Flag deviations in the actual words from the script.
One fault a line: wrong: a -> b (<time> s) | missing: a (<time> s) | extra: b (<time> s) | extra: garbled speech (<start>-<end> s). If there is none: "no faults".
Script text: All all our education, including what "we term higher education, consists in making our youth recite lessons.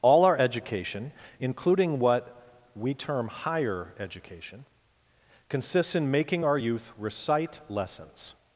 missing: all (0.2 s)